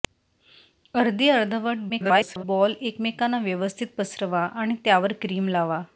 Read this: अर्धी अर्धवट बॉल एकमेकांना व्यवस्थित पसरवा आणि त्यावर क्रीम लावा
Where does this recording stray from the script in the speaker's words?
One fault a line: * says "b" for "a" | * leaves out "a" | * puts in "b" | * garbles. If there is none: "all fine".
* garbles